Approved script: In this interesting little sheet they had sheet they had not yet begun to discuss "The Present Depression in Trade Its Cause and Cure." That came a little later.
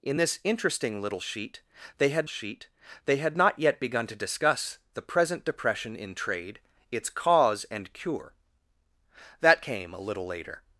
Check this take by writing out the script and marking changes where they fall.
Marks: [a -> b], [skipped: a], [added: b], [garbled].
In this interesting little sheet they had sheet they had not yet begun to discuss "The Present Depression in Trade Its Cause and Cure." That came a little later.